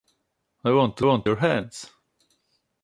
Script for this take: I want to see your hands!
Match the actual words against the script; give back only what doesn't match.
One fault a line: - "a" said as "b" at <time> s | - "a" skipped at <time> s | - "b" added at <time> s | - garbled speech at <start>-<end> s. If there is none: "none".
- "see" said as "want" at 1.0 s